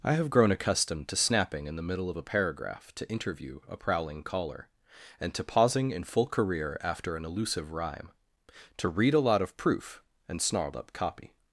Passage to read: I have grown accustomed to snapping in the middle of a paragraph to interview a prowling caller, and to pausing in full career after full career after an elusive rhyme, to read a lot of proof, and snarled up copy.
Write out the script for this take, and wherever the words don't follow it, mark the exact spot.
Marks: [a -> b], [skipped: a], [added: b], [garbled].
I have grown accustomed to snapping in the middle of a paragraph to interview a prowling caller, and to pausing in full career after [skipped: full career after] an elusive rhyme, to read a lot of proof, and snarled up copy.